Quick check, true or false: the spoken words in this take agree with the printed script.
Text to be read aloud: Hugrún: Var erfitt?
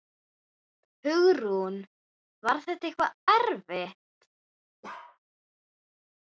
false